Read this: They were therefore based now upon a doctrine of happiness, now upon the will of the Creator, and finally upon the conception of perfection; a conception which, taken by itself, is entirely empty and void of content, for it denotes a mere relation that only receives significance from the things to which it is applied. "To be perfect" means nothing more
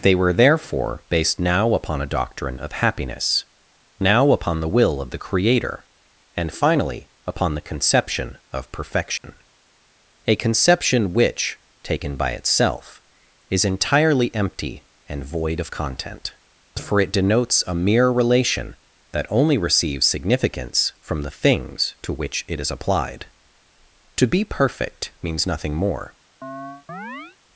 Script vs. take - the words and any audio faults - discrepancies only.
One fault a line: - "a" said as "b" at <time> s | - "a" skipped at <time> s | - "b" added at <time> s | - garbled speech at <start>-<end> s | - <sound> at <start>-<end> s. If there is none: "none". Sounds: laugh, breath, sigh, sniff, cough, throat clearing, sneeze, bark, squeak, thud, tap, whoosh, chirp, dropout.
- dropout at 9.2-9.2 s
- chirp at 26.4-27.4 s